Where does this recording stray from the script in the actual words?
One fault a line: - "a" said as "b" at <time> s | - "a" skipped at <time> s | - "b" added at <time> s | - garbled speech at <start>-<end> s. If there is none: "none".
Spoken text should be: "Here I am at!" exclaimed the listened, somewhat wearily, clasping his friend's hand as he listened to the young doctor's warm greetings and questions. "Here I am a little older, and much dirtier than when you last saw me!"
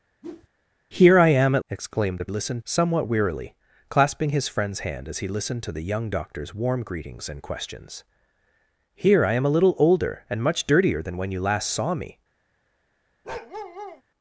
none